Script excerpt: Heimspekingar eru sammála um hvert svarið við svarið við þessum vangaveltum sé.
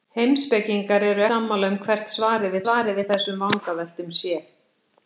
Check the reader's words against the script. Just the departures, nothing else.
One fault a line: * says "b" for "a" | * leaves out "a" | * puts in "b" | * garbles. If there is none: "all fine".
all fine